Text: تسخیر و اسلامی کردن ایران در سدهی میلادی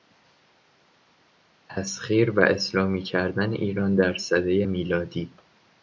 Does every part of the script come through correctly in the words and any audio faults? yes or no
yes